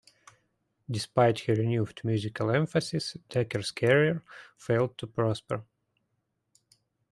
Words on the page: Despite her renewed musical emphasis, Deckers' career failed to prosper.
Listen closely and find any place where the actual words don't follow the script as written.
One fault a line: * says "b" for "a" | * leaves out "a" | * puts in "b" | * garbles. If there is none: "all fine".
all fine